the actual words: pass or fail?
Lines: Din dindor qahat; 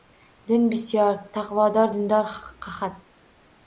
fail